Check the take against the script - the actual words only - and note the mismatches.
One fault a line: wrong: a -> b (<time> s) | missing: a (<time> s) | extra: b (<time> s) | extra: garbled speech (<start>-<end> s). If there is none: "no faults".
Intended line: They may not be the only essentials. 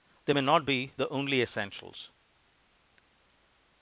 no faults